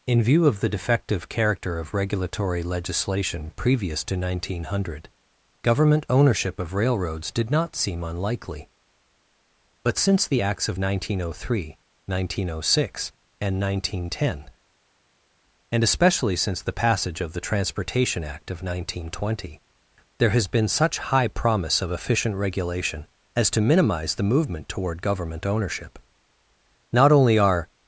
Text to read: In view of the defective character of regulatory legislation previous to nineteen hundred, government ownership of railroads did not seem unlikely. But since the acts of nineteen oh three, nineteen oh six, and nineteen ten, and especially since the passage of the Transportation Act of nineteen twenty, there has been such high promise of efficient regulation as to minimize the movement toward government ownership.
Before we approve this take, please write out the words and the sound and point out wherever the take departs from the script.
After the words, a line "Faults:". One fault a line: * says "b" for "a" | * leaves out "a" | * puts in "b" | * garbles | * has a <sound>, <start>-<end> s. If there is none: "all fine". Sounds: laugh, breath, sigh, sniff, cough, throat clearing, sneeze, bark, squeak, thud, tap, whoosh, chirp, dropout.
In view of the defective character of regulatory legislation previous to nineteen hundred, government ownership of railroads did not seem unlikely. But since the acts of nineteen oh three, nineteen oh six, and nineteen ten, and especially since the passage of the Transportation Act of nineteen twenty, there has been such high promise of efficient regulation as to minimize the movement toward government ownership. Not only are
Faults:
* puts in "Not only are"